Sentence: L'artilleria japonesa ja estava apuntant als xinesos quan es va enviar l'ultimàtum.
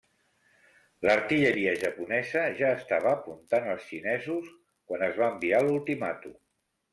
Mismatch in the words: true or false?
false